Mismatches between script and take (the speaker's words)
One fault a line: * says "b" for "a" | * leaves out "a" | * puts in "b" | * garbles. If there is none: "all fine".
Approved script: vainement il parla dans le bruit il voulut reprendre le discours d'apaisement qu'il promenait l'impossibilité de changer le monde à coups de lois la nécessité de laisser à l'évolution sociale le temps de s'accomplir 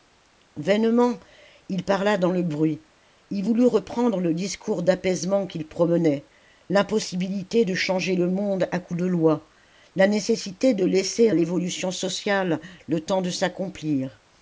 * leaves out "à"